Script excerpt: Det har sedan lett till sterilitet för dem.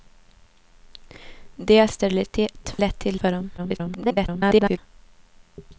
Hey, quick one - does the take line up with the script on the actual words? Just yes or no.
no